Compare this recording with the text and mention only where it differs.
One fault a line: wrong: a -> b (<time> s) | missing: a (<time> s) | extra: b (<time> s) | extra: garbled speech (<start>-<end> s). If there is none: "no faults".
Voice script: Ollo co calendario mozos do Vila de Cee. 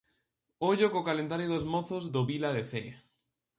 extra: dos (1.5 s)